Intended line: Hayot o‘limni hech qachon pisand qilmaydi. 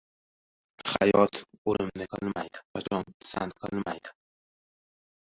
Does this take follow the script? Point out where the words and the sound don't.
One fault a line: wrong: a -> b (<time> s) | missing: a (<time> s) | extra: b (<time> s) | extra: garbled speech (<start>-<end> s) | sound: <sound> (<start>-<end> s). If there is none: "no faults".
wrong: hech -> qilmaydi (2.1 s)